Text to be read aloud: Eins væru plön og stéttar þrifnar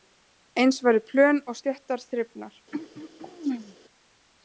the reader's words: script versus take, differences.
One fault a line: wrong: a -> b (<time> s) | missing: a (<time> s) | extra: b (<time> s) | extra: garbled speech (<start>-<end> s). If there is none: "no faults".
no faults